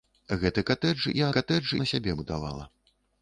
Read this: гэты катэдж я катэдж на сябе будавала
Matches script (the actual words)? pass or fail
pass